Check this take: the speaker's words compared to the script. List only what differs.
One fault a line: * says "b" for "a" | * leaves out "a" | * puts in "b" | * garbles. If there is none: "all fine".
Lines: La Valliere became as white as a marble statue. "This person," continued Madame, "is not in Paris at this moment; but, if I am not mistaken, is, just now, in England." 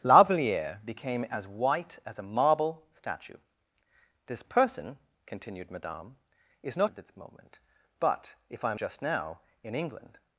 * leaves out "in Paris"
* leaves out "not mistaken is"